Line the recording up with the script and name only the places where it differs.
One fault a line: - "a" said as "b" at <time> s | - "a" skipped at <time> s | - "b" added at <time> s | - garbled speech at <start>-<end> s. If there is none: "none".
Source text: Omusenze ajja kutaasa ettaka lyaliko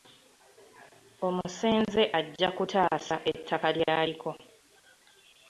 none